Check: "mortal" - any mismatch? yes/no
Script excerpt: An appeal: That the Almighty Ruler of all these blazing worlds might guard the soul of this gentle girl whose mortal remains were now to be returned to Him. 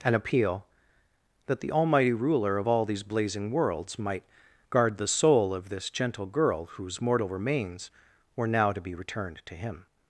no